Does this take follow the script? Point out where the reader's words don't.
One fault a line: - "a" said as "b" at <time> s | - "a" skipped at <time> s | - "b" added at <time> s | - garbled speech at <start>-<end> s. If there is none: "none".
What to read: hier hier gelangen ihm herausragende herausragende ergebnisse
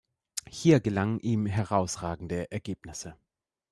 - "hier" skipped at 0.8 s
- "herausragende" skipped at 2.5 s